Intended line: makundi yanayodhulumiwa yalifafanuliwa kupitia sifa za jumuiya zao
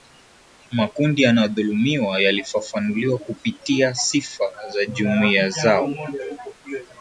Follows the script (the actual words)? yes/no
yes